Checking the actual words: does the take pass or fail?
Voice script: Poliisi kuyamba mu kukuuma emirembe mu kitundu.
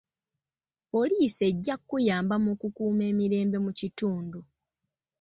fail